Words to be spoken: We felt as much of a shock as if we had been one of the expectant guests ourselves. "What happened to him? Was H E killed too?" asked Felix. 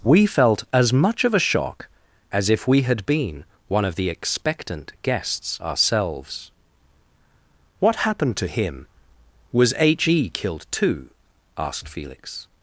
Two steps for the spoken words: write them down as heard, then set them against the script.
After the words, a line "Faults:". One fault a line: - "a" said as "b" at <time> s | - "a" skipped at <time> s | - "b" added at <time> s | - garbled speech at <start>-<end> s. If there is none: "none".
We felt as much of a shock as if we had been one of the expectant guests ourselves. "What happened to him? Was H E killed too?" asked Felix.
Faults:
none